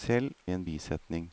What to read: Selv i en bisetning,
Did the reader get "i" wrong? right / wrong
right